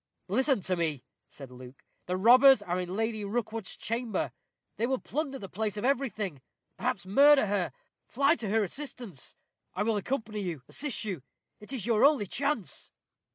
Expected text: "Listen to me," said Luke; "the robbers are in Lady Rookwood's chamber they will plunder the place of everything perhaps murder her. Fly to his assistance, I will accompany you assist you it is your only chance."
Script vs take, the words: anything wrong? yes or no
yes